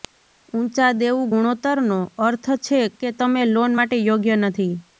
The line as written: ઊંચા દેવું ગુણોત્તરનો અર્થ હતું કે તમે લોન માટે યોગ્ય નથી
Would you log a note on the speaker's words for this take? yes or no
yes